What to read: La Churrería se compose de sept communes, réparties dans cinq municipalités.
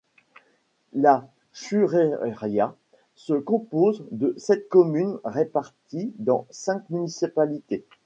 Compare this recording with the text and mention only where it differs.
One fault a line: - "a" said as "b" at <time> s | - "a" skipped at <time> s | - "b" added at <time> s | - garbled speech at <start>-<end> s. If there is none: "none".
none